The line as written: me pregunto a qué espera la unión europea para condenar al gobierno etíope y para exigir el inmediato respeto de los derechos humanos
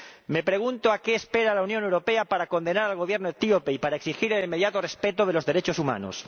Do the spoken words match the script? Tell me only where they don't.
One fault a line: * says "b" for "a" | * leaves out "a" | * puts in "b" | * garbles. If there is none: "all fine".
all fine